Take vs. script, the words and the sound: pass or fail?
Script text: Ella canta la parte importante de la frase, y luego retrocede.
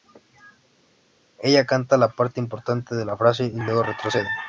pass